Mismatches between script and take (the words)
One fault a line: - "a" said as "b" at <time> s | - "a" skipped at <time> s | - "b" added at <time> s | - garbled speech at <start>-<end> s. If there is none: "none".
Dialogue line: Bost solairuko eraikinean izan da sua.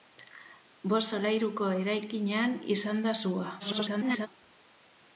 - garbled speech at 3.6-4.3 s